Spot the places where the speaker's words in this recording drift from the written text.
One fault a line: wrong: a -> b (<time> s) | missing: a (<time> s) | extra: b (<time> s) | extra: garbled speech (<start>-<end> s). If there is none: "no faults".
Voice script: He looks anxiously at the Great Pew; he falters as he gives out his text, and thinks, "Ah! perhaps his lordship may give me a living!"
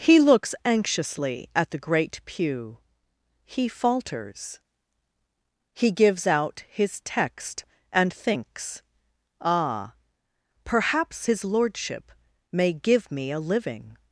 missing: as (4.6 s)